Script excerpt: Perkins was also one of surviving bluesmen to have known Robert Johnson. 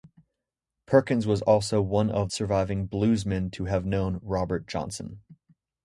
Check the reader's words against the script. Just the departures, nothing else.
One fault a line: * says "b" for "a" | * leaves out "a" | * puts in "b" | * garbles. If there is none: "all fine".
all fine